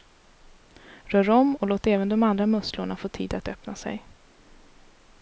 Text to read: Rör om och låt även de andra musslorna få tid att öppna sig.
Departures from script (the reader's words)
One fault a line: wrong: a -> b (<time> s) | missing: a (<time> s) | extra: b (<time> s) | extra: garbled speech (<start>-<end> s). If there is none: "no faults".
no faults